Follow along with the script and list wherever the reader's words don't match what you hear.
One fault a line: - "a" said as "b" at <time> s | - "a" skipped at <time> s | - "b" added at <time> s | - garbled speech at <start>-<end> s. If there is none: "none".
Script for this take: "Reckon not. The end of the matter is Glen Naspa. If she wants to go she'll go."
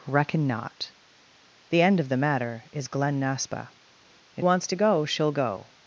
- "she" skipped at 4.5 s